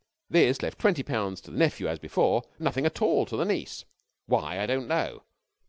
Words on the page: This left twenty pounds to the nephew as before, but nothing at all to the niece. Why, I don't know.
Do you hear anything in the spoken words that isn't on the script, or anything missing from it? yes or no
yes